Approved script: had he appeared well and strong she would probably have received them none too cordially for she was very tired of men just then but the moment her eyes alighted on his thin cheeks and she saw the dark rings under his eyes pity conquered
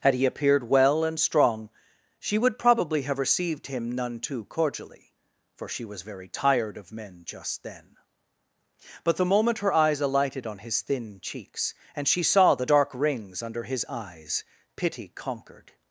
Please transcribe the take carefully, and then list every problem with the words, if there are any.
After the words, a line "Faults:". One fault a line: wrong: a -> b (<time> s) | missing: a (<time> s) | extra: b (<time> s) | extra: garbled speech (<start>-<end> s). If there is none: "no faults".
had he appeared well and strong she would probably have received him none too cordially for she was very tired of men just then but the moment her eyes alighted on his thin cheeks and she saw the dark rings under his eyes pity conquered
Faults:
wrong: them -> him (3.7 s)